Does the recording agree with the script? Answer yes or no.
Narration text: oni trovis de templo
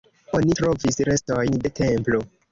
no